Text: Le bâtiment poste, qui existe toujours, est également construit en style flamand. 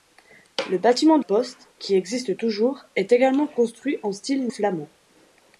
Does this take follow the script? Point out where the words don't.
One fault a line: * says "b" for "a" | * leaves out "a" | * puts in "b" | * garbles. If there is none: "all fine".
all fine